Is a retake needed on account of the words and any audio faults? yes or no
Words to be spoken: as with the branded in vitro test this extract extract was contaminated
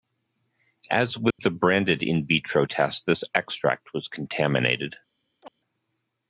yes